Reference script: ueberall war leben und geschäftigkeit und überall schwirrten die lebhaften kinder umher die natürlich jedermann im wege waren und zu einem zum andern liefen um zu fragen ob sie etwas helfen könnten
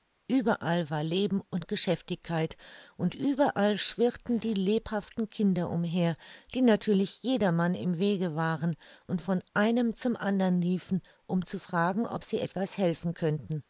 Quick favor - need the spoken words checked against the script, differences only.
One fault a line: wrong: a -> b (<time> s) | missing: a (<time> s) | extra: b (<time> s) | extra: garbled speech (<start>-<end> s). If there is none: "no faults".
wrong: zu -> von (9.2 s)